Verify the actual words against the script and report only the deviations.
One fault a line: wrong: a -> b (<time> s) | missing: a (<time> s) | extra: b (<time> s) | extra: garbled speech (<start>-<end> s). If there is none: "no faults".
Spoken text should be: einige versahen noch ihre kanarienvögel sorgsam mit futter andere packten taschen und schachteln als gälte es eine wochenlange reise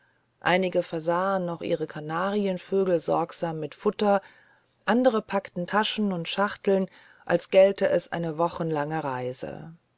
no faults